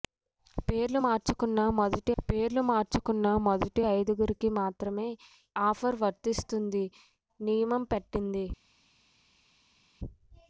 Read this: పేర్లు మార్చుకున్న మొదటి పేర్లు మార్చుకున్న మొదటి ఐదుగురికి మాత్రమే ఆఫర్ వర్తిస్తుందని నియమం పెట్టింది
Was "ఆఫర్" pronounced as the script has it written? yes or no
yes